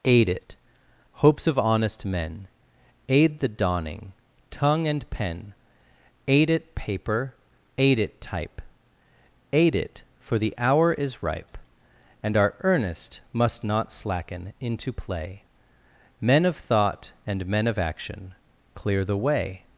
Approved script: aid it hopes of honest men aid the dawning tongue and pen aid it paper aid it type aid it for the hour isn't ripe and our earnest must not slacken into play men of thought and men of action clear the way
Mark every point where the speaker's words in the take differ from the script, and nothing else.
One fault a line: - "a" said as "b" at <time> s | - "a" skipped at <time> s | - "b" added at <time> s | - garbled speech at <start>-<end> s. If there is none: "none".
- "isn't" said as "is" at 10.9 s